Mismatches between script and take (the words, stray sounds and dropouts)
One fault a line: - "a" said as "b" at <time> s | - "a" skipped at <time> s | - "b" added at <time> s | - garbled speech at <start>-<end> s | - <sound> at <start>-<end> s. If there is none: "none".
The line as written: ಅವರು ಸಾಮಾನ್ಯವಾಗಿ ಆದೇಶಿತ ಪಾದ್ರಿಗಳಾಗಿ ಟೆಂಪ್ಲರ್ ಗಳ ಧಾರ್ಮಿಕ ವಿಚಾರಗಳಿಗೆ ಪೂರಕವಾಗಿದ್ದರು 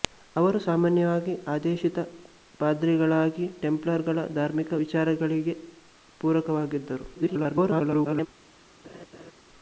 - garbled speech at 7.1-8.3 s
- laugh at 8.8-9.3 s